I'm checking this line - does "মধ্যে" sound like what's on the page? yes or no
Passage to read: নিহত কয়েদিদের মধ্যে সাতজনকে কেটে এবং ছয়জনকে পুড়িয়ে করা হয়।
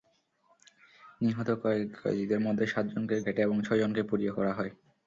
yes